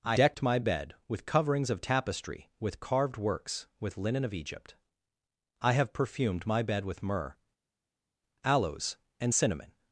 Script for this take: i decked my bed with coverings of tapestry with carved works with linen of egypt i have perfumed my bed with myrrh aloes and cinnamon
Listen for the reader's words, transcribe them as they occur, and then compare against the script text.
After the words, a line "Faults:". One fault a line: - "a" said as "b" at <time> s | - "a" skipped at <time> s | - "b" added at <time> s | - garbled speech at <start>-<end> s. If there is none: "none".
i decked my bed with coverings of tapestry with carved works with linen of egypt i have perfumed my bed with myrrh aloes and cinnamon
Faults:
none